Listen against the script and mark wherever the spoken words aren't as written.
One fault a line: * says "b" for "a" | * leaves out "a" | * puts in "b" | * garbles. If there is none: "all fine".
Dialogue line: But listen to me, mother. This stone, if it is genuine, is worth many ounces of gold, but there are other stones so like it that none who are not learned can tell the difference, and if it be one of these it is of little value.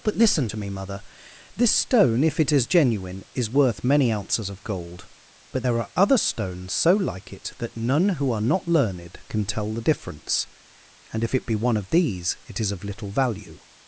all fine